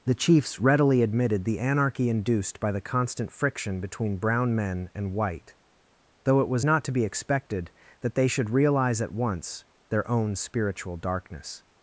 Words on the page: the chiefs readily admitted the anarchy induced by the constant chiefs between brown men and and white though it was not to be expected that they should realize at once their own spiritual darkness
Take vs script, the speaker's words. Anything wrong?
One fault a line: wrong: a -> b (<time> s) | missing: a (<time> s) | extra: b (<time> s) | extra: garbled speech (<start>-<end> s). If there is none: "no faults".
wrong: chiefs -> friction (3.3 s)
missing: and (5.1 s)